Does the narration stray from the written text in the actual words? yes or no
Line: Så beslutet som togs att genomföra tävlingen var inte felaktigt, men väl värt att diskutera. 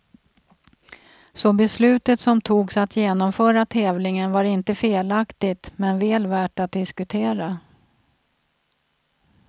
no